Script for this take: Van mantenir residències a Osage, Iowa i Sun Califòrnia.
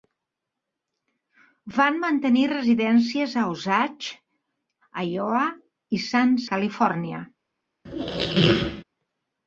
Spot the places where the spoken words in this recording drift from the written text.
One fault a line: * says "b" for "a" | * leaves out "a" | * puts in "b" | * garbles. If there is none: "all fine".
all fine